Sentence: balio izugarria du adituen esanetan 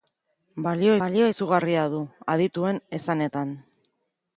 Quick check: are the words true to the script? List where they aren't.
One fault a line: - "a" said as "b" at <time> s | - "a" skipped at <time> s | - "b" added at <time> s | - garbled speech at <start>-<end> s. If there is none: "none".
- "balio" added at 1.0 s